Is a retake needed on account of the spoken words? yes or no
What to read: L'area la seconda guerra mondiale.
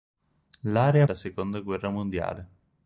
no